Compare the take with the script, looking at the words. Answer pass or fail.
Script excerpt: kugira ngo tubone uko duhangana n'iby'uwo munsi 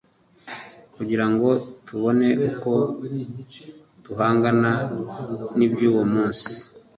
pass